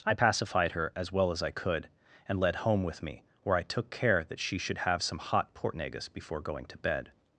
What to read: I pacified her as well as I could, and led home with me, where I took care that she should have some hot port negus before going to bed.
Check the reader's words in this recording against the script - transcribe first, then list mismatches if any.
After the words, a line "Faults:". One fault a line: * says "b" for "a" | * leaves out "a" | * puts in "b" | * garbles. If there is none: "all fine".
I pacified her as well as I could, and led home with me, where I took care that she should have some hot port negus before going to bed.
Faults:
all fine